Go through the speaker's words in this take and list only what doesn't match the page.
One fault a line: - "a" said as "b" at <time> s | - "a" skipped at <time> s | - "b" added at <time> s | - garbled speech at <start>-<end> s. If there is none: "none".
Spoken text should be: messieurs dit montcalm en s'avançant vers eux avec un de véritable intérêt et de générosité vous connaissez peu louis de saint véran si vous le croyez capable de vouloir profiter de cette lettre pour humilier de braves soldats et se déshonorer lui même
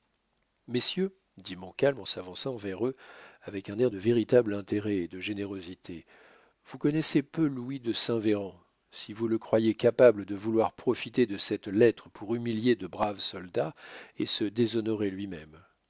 - "air" added at 3.8 s